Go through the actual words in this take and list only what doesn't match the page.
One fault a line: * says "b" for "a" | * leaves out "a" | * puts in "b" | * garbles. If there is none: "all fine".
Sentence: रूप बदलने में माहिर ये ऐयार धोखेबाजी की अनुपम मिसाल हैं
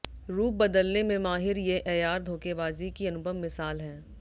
all fine